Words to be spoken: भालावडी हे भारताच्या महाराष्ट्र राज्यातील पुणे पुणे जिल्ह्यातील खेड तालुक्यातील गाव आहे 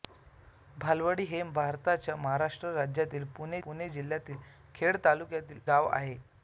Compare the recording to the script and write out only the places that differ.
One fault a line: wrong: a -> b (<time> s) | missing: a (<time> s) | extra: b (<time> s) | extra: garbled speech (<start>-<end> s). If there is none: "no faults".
no faults